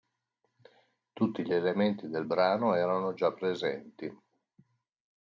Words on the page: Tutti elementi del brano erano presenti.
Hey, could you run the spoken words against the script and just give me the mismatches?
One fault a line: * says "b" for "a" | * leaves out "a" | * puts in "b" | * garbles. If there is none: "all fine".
* puts in "gli"
* puts in "già"